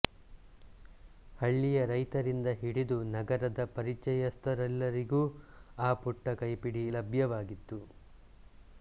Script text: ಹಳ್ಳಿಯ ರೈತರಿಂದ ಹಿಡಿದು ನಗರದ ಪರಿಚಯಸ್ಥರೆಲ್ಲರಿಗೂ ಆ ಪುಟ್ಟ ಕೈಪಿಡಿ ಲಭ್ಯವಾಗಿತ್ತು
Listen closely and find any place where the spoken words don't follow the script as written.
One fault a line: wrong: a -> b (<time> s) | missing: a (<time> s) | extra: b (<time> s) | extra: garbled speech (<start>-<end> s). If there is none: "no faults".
no faults